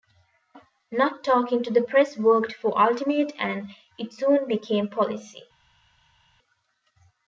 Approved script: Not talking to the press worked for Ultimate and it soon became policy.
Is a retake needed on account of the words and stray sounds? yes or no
no